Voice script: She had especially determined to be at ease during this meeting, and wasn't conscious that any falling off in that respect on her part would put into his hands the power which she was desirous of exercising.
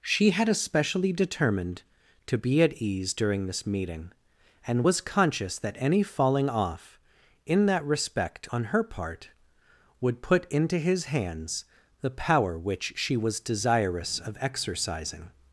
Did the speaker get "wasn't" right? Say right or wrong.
wrong